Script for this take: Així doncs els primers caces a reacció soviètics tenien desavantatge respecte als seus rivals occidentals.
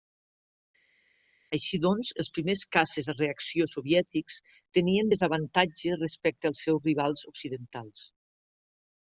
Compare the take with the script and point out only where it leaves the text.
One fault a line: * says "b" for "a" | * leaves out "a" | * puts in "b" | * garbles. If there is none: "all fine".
all fine